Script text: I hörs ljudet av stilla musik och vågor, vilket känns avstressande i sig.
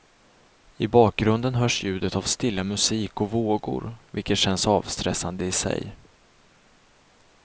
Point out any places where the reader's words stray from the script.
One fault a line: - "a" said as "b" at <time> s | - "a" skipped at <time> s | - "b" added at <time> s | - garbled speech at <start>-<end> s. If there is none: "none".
- "bakgrunden" added at 0.8 s